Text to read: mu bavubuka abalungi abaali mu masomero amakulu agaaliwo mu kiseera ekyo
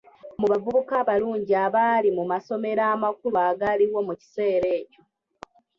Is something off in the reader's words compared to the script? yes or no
no